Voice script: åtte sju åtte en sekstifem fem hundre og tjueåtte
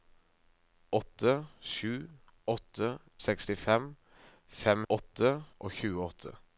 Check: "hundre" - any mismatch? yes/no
yes